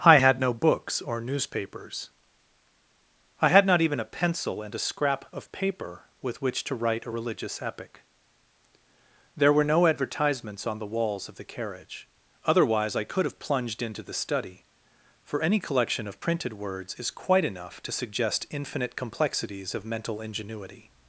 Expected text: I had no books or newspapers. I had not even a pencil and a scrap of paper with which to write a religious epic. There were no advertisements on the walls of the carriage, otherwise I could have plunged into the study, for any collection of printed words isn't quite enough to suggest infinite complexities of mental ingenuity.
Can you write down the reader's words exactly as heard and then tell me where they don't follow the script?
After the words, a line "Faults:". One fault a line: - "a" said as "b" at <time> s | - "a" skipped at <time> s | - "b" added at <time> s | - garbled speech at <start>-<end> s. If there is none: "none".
I had no books or newspapers. I had not even a pencil and a scrap of paper with which to write a religious epic. There were no advertisements on the walls of the carriage, otherwise I could have plunged into the study, for any collection of printed words is quite enough to suggest infinite complexities of mental ingenuity.
Faults:
- "isn't" said as "is" at 17.0 s